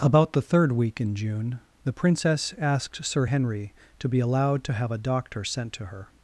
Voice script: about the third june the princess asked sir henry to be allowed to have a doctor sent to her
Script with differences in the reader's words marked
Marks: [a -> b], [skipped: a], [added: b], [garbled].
about the third [added: week in] june the princess asked sir henry to be allowed to have a doctor sent to her